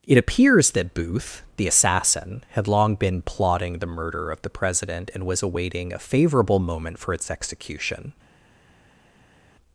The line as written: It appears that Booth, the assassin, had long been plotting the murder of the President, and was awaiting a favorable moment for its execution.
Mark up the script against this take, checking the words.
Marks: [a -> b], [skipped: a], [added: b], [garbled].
It appears that Booth, the assassin, had long been plotting the murder of the President, and was awaiting a favorable moment for its execution.